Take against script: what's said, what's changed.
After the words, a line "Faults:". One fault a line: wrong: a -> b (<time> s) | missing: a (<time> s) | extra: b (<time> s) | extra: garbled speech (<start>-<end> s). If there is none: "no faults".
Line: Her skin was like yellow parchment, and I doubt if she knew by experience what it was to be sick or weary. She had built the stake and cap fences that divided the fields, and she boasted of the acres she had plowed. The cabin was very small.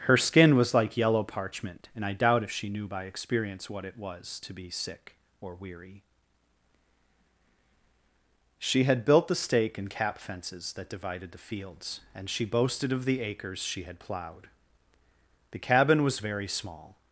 Her skin was like yellow parchment, and I doubt if she knew by experience what it was to be sick or weary. She had built the stake and cap fences that divided the fields, and she boasted of the acres she had plowed. The cabin was very small.
Faults:
no faults